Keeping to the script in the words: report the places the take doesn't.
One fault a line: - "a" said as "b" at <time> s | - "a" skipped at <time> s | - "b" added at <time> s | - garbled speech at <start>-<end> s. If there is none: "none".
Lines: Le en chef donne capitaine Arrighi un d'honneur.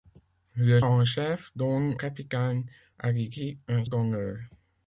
none